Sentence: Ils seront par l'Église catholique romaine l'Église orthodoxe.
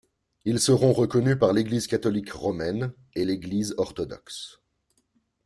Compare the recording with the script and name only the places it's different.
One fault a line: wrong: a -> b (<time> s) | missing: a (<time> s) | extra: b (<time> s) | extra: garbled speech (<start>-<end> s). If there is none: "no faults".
extra: reconnus (0.9 s)
extra: et (3.1 s)